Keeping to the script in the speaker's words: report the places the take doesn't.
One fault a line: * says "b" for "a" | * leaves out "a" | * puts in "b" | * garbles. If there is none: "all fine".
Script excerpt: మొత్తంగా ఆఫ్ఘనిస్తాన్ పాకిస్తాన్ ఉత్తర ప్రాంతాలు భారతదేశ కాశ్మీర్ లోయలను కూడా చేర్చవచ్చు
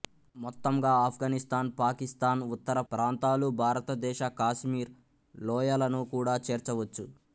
all fine